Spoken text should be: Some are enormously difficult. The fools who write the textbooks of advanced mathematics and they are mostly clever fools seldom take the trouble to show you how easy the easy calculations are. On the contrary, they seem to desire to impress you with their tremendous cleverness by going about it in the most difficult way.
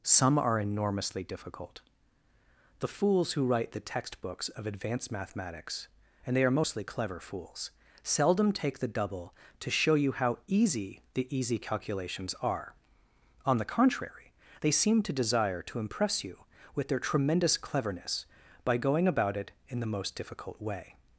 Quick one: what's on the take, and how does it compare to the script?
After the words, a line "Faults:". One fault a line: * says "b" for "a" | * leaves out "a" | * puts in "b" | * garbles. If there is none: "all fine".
Some are enormously difficult. The fools who write the textbooks of advanced mathematics and they are mostly clever fools seldom take the double to show you how easy the easy calculations are. On the contrary, they seem to desire to impress you with their tremendous cleverness by going about it in the most difficult way.
Faults:
* says "double" for "trouble"